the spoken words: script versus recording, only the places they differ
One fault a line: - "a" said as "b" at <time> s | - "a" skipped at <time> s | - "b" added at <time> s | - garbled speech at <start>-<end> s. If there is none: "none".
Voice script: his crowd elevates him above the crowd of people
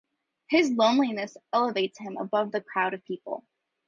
- "crowd" said as "loneliness" at 0.7 s